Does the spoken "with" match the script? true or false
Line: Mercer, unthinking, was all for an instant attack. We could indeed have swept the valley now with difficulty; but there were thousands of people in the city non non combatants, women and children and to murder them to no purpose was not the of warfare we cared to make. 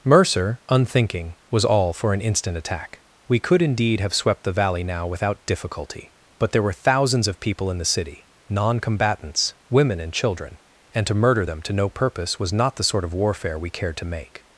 false